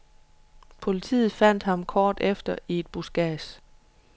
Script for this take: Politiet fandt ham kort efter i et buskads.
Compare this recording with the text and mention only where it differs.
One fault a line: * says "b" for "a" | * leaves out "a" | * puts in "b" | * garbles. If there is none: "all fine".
all fine